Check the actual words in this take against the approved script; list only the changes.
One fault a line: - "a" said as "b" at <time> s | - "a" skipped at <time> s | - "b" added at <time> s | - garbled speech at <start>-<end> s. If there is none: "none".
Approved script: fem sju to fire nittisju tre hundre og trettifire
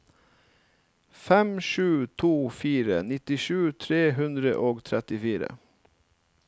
none